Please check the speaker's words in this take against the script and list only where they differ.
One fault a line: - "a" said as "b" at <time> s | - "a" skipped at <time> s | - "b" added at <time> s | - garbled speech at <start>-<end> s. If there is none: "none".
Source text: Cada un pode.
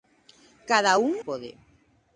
none